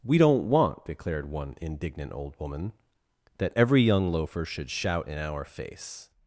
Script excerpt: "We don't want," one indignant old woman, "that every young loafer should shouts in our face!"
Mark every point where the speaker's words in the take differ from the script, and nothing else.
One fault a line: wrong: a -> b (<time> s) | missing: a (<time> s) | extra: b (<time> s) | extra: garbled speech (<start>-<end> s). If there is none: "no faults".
extra: declared (0.8 s)
wrong: shouts -> shout (4.7 s)